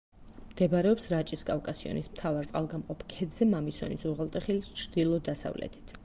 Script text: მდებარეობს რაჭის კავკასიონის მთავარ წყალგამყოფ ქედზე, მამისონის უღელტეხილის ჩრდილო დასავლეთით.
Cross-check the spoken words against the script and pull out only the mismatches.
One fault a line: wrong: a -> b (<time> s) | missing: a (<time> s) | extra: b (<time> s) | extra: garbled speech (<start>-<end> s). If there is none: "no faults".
no faults